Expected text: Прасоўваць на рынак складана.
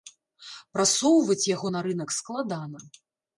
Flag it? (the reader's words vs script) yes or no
yes